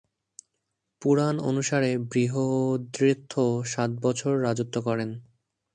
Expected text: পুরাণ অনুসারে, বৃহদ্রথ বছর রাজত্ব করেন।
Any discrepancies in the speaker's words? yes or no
yes